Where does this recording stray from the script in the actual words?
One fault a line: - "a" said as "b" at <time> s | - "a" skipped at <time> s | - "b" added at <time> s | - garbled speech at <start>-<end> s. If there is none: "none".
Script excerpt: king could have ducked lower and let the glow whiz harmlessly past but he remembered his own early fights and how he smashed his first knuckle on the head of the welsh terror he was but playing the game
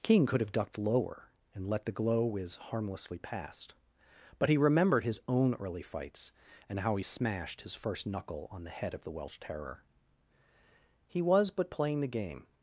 none